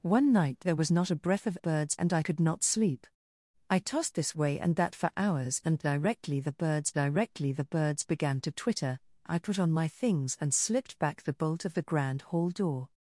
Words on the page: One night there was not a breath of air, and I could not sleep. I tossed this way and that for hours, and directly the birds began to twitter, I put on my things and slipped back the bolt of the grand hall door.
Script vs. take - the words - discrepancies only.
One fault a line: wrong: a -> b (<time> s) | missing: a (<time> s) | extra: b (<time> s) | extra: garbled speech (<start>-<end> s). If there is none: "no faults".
wrong: air -> birds (1.6 s)
extra: directly the birds (6.9 s)